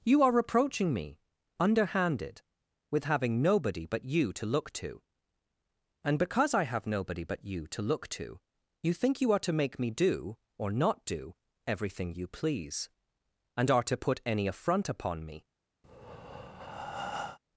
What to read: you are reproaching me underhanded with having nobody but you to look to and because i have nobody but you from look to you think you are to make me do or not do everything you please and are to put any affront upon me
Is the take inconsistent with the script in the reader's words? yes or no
yes